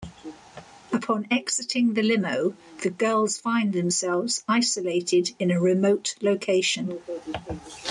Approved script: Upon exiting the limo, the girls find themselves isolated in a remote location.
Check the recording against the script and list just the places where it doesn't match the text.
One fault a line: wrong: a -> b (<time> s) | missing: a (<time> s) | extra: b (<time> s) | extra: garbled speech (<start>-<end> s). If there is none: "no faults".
no faults